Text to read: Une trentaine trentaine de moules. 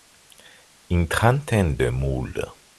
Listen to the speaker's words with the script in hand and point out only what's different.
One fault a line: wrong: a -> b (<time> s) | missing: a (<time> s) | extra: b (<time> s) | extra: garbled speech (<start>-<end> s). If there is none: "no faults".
missing: trentaine (1.8 s)